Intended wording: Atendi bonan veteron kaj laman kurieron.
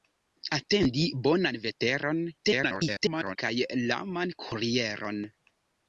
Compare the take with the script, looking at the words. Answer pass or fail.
fail